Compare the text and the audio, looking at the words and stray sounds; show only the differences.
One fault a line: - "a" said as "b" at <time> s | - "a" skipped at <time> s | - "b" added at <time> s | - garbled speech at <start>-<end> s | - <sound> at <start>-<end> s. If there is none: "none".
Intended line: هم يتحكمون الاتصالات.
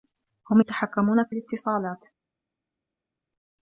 - "في" added at 1.2 s